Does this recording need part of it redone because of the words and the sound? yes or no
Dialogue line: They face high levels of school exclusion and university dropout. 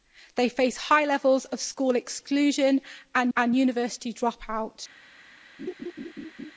yes